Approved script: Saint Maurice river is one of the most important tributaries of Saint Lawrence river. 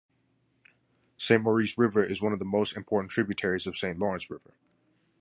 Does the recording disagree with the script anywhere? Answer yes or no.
no